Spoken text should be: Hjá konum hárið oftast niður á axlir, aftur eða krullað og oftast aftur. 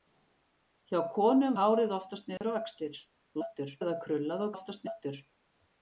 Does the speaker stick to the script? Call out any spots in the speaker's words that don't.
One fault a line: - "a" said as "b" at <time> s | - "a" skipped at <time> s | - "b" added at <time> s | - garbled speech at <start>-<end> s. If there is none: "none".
none